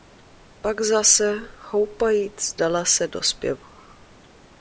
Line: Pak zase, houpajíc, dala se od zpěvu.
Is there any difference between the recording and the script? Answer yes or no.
yes